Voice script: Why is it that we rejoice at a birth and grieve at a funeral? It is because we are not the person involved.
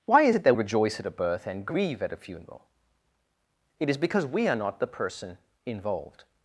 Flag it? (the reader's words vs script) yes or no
yes